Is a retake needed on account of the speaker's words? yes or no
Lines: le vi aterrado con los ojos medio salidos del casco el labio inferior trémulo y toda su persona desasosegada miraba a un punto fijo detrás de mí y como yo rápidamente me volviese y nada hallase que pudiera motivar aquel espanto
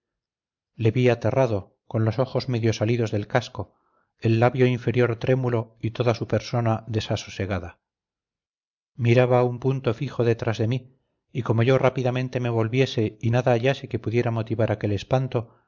no